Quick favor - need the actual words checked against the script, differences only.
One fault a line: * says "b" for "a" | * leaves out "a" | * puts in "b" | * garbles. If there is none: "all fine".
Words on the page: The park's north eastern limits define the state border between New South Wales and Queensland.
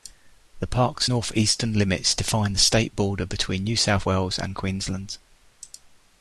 all fine